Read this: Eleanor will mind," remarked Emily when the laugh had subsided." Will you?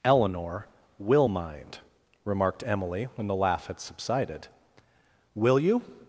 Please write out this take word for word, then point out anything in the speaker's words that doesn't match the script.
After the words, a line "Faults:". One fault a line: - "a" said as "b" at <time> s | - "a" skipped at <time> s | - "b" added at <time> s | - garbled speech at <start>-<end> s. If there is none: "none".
Eleanor will mind," remarked Emily when the laugh had subsided." Will you?
Faults:
none